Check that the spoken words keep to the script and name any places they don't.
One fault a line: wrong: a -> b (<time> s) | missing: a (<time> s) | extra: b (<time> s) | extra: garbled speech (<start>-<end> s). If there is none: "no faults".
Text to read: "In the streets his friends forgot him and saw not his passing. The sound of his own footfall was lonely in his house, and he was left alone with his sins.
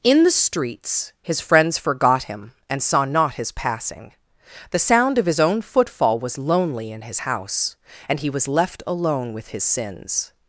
no faults